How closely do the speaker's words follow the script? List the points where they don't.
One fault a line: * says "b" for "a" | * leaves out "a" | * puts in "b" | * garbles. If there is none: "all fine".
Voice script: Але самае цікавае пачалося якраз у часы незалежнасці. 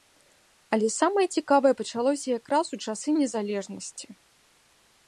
all fine